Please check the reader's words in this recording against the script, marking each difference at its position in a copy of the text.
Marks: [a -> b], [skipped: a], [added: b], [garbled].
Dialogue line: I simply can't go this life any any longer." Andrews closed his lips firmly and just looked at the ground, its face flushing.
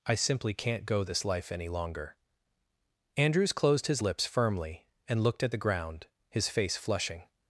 I simply can't go this life any [skipped: any] longer." Andrews closed his lips firmly and [skipped: just] looked at the ground, [its -> his] face flushing.